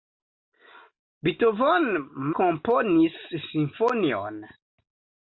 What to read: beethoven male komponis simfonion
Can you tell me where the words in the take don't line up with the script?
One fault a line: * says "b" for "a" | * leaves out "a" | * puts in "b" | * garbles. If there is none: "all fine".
* leaves out "male"